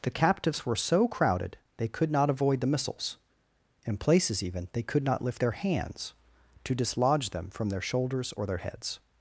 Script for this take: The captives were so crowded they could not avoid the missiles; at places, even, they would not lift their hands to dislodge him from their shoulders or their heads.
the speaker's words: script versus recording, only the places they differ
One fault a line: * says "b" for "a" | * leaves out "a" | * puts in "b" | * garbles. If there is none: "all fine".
* says "in" for "at"
* says "could" for "would"
* says "them" for "him"